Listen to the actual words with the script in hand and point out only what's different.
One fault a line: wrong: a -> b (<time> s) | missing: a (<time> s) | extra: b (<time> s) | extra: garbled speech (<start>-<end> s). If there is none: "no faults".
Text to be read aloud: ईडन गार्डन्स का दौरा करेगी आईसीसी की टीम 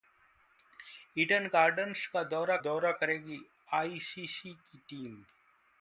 extra: दौरा (2.6 s)